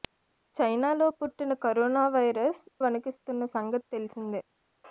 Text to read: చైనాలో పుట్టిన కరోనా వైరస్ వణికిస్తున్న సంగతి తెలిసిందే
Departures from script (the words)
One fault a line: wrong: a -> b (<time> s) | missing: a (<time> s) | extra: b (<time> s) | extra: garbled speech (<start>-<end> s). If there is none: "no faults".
no faults